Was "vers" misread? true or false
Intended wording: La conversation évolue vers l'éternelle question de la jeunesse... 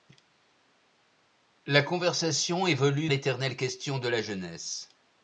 true